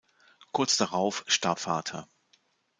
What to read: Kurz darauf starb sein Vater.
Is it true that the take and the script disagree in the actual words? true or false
true